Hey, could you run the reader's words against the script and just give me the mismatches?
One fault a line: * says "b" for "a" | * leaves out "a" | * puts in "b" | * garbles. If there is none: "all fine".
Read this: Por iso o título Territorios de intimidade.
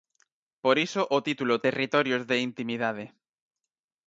all fine